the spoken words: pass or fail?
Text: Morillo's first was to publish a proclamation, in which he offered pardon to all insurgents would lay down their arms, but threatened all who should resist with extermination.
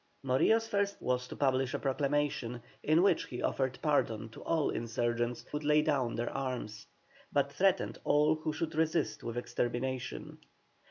pass